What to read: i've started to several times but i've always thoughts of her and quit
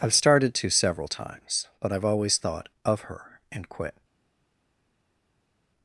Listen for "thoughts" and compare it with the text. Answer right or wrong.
wrong